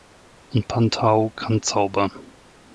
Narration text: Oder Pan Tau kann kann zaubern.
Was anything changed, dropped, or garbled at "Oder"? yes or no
yes